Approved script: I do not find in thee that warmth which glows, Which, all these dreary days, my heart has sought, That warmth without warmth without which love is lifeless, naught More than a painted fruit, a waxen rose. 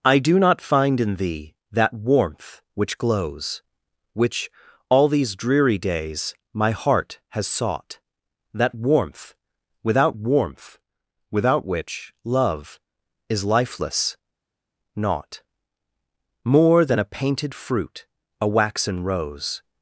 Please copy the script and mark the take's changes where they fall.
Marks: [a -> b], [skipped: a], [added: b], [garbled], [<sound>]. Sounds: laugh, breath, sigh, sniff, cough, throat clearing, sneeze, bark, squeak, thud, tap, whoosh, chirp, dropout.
I do not find in thee that warmth which glows, Which, all these dreary days, my heart has sought, That warmth without warmth without which love is lifeless, naught More than a painted fruit, a waxen rose.